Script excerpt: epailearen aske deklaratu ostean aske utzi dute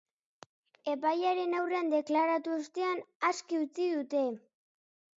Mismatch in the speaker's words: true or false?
true